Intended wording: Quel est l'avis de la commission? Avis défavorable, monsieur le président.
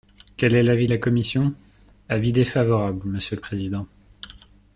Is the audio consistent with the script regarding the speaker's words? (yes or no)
yes